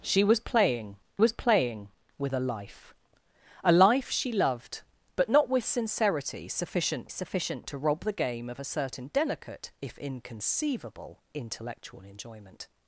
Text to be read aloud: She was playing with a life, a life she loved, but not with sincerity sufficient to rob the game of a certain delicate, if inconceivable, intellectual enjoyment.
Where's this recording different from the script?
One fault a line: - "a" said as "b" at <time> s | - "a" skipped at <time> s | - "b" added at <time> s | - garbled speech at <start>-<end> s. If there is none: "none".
- "was playing" added at 1.2 s
- "sufficient" added at 7.1 s